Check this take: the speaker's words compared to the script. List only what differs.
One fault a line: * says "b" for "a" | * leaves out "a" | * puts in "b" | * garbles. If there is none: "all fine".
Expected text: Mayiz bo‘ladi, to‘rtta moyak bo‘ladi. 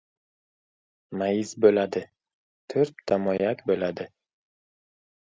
all fine